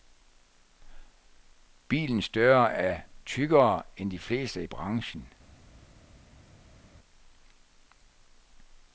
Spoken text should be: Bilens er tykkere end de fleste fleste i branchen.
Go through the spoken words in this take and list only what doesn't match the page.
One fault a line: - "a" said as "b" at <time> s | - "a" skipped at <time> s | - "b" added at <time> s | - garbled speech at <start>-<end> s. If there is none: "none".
- "døre" added at 2.3 s
- "fleste" skipped at 4.6 s